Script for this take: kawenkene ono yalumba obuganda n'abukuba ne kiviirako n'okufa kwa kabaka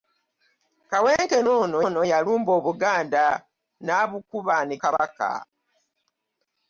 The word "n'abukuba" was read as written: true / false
true